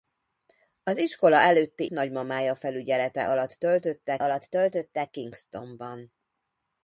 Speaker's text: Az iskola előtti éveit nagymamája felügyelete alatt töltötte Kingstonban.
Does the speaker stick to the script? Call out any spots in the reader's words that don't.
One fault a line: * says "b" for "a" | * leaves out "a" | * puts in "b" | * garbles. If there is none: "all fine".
* leaves out "éveit"
* puts in "alatt töltötte"